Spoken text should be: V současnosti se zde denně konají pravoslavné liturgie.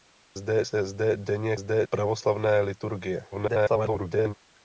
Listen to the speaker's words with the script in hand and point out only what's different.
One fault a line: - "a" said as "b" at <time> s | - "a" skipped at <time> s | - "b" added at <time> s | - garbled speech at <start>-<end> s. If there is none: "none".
- "současnosti" said as "zde" at 0.3 s
- "konají" said as "zde" at 1.5 s
- garbled speech at 3.3-4.3 s